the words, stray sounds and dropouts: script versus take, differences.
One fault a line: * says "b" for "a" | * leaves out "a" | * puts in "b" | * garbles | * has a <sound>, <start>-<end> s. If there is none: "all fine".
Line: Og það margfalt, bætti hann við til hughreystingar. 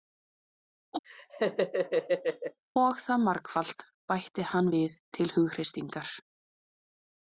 * has a laugh, 1.0-2.6 s